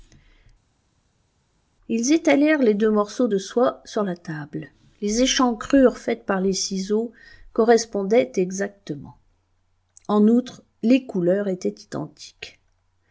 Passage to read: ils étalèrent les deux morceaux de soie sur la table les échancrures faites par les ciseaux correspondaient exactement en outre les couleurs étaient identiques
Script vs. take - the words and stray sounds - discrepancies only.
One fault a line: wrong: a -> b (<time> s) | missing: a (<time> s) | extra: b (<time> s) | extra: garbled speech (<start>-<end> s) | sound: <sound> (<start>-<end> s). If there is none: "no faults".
no faults